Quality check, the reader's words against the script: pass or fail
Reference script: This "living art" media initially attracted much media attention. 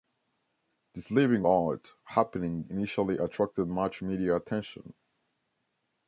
fail